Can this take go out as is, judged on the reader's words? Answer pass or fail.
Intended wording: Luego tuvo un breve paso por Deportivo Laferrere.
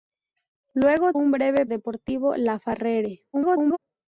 fail